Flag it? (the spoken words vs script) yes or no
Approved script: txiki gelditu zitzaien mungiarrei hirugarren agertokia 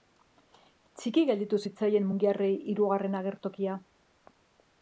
no